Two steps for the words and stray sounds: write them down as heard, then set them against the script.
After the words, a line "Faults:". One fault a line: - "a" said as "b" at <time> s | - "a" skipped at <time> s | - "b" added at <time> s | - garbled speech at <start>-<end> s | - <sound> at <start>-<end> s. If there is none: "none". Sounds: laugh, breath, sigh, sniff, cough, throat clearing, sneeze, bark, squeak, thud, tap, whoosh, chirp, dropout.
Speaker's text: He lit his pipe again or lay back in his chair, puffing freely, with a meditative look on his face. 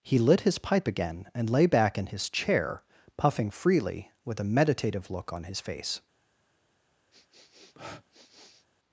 He lit his pipe again and lay back in his chair, puffing freely, with a meditative look on his face.
Faults:
- "or" said as "and" at 1.4 s
- sniff at 7.1-8.7 s